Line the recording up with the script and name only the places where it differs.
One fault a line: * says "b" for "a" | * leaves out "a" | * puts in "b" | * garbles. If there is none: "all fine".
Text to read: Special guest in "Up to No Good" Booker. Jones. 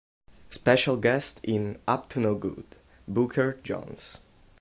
all fine